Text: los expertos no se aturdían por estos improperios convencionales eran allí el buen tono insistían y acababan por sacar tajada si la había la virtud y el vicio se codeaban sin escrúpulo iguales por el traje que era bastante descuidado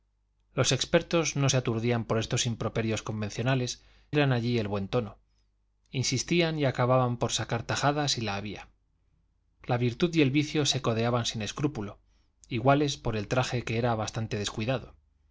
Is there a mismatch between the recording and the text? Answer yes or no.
no